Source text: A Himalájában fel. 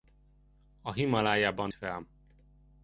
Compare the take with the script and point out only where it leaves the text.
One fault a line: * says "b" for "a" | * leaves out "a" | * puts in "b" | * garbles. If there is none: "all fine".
all fine